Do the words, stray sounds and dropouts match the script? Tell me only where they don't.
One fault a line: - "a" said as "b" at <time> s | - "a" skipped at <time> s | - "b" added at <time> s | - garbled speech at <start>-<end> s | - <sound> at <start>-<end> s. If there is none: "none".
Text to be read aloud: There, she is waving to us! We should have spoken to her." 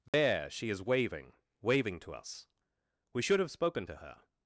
- dropout at 0.1-0.1 s
- "waving" added at 1.6 s